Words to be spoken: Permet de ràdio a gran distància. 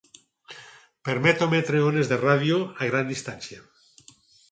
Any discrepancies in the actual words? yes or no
yes